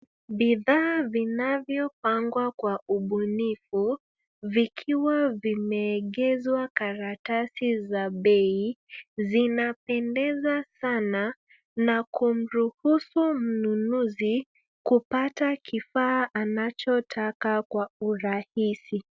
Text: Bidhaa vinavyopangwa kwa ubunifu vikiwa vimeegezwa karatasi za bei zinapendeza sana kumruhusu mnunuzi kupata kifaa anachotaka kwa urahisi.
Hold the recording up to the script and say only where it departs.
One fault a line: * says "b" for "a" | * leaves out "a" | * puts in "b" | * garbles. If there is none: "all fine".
* puts in "na"